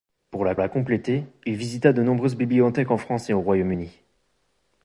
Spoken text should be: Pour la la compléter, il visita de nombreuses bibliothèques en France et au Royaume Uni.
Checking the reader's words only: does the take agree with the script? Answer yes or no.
yes